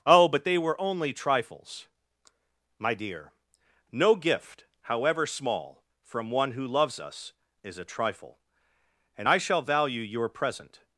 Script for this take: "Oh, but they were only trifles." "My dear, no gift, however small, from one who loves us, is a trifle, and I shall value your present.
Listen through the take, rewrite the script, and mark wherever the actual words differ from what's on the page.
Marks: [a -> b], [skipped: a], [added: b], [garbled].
"Oh, but they were only trifles." "My dear, no gift, however small, from one who loves us, is a trifle, and I shall value your present.